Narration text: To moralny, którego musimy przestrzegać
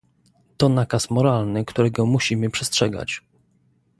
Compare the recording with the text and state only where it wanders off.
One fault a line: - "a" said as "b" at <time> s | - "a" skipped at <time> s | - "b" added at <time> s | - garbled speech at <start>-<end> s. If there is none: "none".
- "nakaz" added at 0.7 s